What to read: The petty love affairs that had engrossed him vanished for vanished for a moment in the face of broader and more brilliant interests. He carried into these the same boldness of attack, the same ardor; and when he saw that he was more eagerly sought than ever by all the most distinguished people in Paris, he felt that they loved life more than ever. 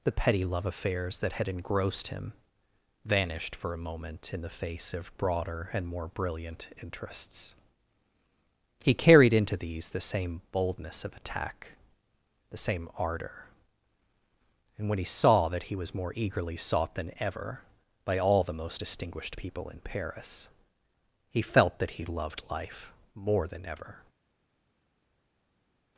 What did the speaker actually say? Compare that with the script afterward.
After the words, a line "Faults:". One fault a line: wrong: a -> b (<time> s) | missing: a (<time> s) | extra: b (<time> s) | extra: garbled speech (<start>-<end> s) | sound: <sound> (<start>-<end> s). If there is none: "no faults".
The petty love affairs that had engrossed him vanished for a moment in the face of broader and more brilliant interests. He carried into these the same boldness of attack, the same ardor; and when he saw that he was more eagerly sought than ever by all the most distinguished people in Paris, he felt that he loved life more than ever.
Faults:
missing: vanished for (3.7 s)
wrong: they -> he (21.9 s)